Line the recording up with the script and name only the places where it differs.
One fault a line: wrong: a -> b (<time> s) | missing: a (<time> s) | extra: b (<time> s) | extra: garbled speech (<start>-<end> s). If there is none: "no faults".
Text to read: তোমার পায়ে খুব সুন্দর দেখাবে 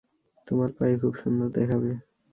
no faults